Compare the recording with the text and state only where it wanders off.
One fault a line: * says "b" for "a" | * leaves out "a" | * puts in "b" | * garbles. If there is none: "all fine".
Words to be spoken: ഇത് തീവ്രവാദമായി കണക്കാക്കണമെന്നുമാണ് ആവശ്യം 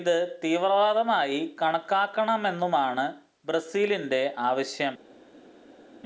* puts in "ബ്രസീലിന്റെ"